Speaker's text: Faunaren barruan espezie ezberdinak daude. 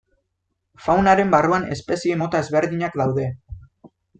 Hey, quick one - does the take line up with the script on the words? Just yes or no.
no